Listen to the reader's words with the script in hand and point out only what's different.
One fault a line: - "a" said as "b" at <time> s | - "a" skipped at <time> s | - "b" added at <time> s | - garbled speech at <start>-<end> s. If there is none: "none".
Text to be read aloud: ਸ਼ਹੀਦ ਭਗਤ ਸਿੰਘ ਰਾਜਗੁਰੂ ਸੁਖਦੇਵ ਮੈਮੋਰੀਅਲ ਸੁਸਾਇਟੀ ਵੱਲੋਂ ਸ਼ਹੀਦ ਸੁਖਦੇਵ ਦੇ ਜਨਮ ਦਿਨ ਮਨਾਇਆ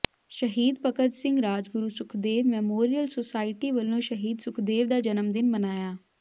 - "ਦੇ" said as "ਦਾ" at 4.9 s